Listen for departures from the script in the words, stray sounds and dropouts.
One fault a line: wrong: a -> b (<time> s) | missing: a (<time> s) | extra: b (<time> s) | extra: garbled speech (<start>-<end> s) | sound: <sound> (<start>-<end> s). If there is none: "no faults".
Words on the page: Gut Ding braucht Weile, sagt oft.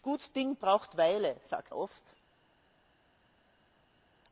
no faults